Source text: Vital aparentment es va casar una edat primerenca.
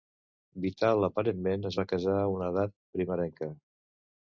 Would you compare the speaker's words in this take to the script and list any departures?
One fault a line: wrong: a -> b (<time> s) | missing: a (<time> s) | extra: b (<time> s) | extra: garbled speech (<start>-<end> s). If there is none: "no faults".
extra: a (2.2 s)